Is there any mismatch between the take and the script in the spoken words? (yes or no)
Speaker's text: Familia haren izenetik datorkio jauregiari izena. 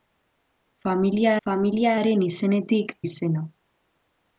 yes